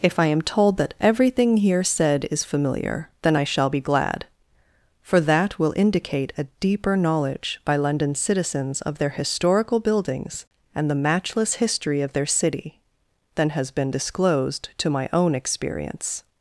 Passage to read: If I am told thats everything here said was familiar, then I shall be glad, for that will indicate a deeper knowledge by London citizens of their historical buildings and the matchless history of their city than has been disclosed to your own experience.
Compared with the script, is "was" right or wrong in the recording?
wrong